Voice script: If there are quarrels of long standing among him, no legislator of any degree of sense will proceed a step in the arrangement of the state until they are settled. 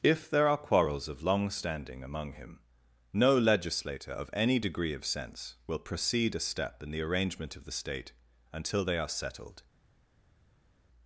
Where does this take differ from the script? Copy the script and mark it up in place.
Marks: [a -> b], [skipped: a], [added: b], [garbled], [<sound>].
If there are quarrels of long standing among him, no legislator of any degree of sense will proceed a step in the arrangement of the state until they are settled.